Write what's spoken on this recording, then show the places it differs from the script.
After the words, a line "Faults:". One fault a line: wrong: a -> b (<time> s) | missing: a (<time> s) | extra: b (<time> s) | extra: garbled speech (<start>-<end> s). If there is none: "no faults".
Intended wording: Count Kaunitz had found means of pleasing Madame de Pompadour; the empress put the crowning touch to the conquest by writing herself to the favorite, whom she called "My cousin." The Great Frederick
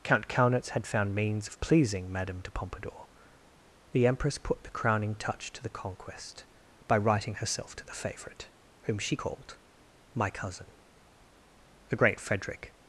Count Kaunitz had found means of pleasing Madame de Pompadour; the empress put the crowning touch to the conquest by writing herself to the favorite, whom she called "My cousin." The Great Frederick
Faults:
no faults